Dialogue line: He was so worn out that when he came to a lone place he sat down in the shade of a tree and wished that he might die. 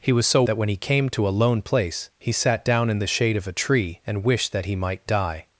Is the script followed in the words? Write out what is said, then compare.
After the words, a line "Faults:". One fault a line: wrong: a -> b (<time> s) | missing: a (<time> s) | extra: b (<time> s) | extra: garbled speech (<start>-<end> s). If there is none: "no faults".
He was so that when he came to a lone place he sat down in the shade of a tree and wished that he might die.
Faults:
missing: worn out (0.4 s)